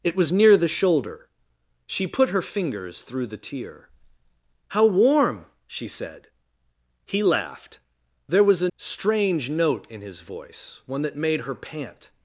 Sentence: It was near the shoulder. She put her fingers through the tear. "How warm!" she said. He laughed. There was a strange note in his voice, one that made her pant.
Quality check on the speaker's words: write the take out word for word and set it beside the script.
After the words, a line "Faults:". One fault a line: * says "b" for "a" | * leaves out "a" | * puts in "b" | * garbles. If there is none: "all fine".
It was near the shoulder. She put her fingers through the tear. "How warm!" she said. He laughed. There was a strange note in his voice, one that made her pant.
Faults:
all fine